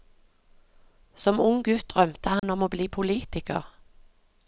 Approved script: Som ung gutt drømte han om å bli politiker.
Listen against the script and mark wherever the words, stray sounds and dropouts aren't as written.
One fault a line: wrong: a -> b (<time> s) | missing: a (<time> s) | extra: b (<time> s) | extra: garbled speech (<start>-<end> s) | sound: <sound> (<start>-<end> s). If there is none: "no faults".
sound: dropout (2.4-2.4 s)